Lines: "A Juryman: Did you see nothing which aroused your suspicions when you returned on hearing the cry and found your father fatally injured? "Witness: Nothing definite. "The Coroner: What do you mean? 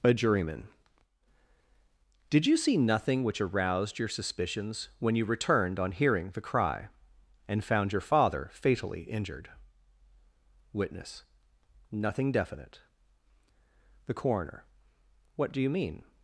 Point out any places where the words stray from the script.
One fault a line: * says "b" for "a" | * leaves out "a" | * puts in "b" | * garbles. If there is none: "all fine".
all fine